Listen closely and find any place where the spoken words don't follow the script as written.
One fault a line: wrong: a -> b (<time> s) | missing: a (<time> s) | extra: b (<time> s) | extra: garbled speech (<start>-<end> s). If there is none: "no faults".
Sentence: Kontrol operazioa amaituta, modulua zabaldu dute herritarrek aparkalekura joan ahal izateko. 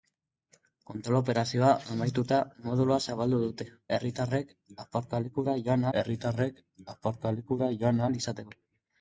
extra: herritarrek aparkalekura joan (6.0 s)